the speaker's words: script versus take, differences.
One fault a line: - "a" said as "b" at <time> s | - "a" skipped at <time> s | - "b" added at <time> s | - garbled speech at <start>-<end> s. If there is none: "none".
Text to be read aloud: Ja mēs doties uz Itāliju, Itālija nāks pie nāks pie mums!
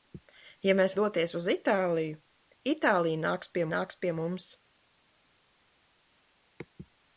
none